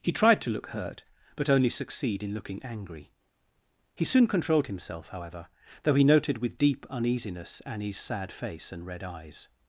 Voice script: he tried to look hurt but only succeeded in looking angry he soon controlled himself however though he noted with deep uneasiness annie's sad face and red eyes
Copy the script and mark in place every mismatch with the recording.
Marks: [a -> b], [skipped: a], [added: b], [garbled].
he tried to look hurt but only [succeeded -> succeed] in looking angry he soon controlled himself however though he noted with deep uneasiness annie's sad face and red eyes